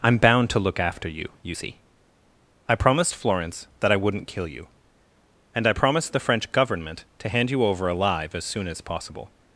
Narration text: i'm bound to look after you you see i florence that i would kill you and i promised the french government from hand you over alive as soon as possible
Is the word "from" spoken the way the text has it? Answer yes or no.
no